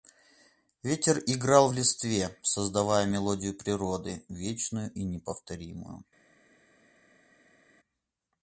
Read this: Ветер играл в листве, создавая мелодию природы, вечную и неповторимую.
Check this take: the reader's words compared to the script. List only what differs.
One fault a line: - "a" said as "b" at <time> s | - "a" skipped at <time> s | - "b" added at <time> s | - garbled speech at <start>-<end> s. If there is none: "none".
none